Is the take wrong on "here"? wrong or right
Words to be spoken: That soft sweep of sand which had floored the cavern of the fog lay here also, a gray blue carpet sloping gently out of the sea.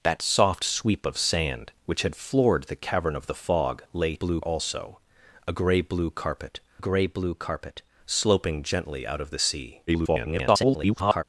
wrong